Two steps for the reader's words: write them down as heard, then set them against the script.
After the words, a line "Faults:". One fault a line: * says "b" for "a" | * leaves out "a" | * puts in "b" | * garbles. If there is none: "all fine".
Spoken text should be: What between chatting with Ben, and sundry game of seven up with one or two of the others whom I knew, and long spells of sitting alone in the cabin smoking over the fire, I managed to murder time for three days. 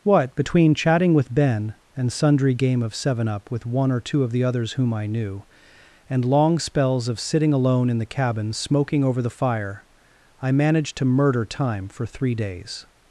What between chatting with Ben, and sundry game of seven up with one or two of the others whom I knew, and long spells of sitting alone in the cabin smoking over the fire, I managed to murder time for three days.
Faults:
all fine